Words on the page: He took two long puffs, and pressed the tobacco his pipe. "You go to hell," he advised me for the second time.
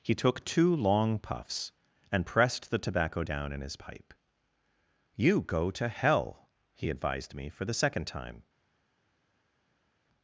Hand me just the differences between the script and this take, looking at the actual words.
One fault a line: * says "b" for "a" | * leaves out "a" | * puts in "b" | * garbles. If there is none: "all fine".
* puts in "down in"